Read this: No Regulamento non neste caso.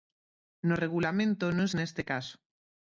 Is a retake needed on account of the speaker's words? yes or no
no